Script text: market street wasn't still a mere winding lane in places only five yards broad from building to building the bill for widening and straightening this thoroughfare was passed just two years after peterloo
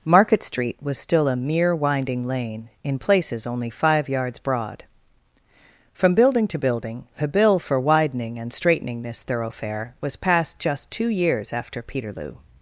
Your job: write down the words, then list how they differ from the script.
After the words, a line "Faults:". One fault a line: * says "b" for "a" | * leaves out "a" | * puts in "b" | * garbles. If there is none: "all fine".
market street was still a mere winding lane in places only five yards broad from building to building the bill for widening and straightening this thoroughfare was passed just two years after peterloo
Faults:
* says "was" for "wasn't"